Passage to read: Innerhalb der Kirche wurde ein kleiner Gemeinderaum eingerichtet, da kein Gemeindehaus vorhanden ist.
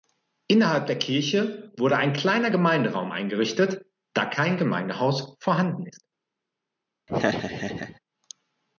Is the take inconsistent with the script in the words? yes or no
no